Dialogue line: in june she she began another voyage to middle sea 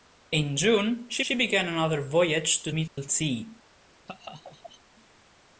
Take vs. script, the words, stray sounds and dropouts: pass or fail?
fail